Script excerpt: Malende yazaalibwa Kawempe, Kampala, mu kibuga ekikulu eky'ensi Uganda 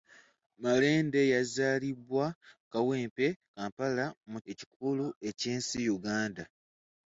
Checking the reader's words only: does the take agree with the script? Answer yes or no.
no